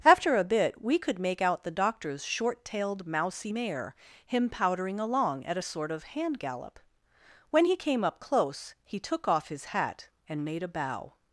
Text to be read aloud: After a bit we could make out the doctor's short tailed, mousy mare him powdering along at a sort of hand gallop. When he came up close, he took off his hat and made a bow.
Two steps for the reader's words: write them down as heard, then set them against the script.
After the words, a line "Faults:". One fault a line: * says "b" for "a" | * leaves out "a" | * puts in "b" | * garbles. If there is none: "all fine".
After a bit we could make out the doctor's short tailed, mousy mare him powdering along at a sort of hand gallop. When he came up close, he took off his hat and made a bow.
Faults:
all fine